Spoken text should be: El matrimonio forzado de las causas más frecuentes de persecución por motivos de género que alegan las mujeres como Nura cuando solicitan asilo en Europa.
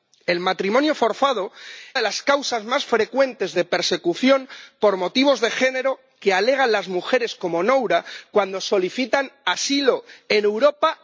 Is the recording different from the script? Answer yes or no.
no